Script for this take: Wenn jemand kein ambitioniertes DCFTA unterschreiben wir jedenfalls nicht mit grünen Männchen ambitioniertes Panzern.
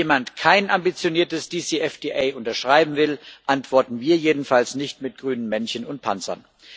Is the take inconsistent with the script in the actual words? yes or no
yes